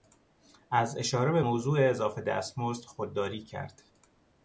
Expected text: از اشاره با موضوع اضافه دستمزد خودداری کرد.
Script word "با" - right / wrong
wrong